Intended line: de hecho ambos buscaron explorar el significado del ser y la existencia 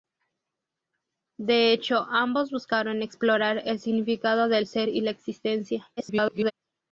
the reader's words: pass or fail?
fail